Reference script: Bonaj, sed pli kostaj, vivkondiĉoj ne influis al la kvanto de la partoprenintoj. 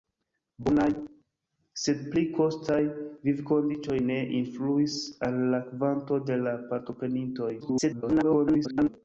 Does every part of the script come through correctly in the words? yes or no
no